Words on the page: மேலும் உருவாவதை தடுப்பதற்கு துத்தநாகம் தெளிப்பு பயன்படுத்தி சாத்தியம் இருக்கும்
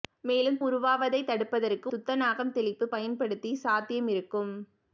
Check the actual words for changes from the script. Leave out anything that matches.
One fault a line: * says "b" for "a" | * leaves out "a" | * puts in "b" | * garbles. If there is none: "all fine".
all fine